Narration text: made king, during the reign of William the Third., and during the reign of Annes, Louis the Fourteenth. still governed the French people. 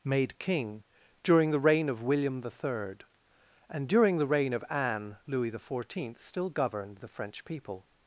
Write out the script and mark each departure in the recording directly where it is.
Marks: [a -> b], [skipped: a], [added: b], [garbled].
made king, during the reign of William the Third., and during the reign of [Annes, -> Anne] Louis the Fourteenth. still governed the French people.